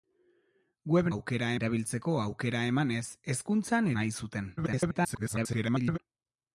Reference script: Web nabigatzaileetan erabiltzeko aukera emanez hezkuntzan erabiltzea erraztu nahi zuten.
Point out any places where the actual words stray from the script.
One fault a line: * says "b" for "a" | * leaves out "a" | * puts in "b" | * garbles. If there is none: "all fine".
* says "aukera" for "nabigatzaileetan"
* leaves out "erabiltzea erraztu"
* garbles